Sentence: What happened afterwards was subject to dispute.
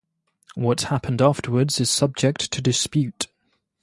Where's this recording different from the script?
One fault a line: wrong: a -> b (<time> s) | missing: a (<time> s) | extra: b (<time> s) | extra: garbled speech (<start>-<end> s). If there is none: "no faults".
wrong: was -> is (1.8 s)